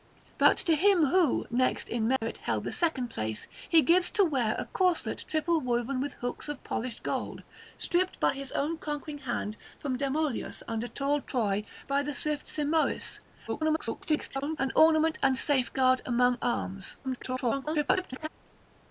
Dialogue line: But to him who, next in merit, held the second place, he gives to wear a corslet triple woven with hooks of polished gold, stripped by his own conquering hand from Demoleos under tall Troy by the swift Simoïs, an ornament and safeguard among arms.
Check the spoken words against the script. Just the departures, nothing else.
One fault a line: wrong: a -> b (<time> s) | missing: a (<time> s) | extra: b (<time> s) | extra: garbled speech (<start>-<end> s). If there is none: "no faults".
extra: garbled speech (13.5-14.6 s)
extra: garbled speech (17.0-18.3 s)